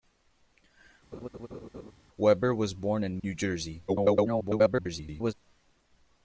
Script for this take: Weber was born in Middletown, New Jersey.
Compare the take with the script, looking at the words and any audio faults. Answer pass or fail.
fail